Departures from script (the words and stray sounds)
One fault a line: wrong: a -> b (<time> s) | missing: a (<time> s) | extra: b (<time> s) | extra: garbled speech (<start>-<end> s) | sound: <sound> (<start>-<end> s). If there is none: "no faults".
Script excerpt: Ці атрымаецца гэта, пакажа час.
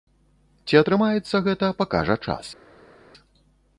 no faults